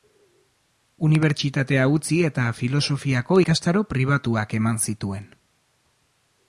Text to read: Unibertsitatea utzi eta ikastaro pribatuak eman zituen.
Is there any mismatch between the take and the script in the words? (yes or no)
yes